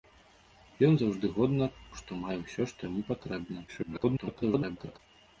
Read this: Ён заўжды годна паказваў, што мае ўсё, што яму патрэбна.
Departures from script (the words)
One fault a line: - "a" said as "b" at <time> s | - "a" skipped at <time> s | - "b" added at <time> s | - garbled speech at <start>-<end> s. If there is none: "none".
- "паказваў" skipped at 1.6 s
- garbled speech at 3.7-5.0 s